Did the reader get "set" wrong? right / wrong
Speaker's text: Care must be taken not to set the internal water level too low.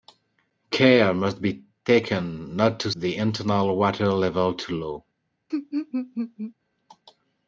wrong